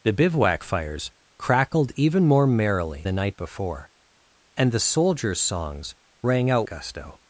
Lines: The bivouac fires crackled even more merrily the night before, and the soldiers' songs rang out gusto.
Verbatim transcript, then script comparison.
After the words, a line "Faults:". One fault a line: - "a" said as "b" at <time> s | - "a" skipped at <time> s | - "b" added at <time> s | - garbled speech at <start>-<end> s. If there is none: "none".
The bivouac fires crackled even more merrily the night before, and the soldiers' songs rang out gusto.
Faults:
none